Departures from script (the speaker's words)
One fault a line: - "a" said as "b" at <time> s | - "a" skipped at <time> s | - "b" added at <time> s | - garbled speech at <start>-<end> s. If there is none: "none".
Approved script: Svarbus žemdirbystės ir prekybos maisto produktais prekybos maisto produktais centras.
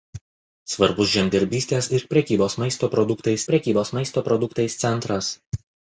none